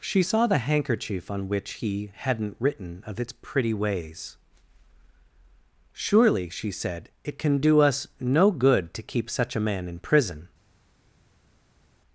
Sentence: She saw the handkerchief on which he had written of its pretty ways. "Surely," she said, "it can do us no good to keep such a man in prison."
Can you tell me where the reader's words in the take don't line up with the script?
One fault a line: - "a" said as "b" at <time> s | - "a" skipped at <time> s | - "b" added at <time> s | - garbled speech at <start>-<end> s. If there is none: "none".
- "had" said as "hadn't" at 2.1 s